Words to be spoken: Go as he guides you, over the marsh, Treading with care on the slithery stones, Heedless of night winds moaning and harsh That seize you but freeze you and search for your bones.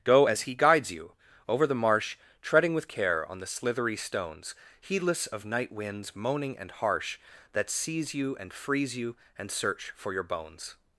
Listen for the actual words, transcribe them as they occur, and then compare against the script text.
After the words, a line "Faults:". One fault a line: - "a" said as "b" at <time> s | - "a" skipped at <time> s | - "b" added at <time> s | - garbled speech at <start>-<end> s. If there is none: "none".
Go as he guides you, over the marsh, Treading with care on the slithery stones, Heedless of night winds moaning and harsh That seize you and freeze you and search for your bones.
Faults:
- "but" said as "and" at 8.4 s